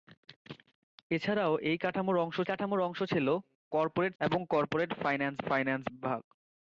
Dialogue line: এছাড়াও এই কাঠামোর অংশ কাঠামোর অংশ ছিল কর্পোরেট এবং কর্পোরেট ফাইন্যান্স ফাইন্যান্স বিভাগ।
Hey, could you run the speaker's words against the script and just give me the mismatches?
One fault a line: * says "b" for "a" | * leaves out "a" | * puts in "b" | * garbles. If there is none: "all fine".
all fine